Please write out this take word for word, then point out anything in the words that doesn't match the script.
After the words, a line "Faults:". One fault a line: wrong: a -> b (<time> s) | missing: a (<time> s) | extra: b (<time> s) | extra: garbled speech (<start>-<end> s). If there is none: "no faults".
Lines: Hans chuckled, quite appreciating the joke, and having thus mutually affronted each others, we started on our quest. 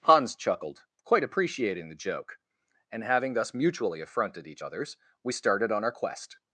Hans chuckled, quite appreciating the joke, and having thus mutually affronted each others, we started on our quest.
Faults:
no faults